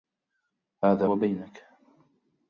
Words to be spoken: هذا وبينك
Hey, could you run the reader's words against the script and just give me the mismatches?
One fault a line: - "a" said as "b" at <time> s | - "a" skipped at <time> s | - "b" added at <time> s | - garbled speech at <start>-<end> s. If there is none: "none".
none